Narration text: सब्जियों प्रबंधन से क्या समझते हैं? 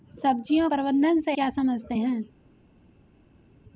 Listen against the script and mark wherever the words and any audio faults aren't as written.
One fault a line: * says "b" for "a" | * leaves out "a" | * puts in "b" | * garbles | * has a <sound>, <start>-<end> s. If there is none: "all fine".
all fine